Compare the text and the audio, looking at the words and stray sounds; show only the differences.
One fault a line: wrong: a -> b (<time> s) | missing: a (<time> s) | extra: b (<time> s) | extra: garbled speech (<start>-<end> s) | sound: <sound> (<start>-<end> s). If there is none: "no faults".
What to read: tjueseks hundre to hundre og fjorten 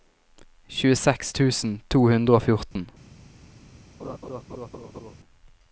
wrong: hundre -> tusen (1.4 s)
sound: dropout (2.7-2.8 s)
sound: laugh (4.0-5.2 s)